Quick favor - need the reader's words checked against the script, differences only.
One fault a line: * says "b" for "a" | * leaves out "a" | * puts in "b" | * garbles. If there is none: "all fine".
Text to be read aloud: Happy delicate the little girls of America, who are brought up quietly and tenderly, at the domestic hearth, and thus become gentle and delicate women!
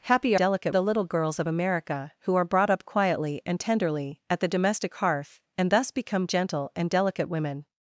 all fine